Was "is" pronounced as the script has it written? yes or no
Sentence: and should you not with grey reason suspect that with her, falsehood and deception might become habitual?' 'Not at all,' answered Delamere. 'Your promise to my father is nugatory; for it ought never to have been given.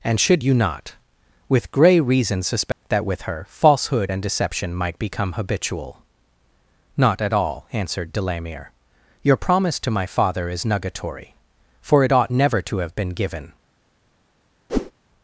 yes